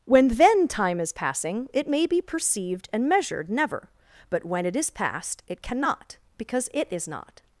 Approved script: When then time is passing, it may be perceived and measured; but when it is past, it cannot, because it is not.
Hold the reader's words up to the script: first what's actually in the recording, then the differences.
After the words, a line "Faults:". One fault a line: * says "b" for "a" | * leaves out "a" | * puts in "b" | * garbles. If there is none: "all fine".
When then time is passing, it may be perceived and measured; never but when it is past, it cannot, because it is not.
Faults:
* puts in "never"